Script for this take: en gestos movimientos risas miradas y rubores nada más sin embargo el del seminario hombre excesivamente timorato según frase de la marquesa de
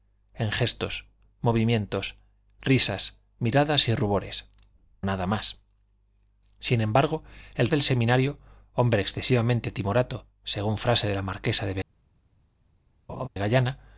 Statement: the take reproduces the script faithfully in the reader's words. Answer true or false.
true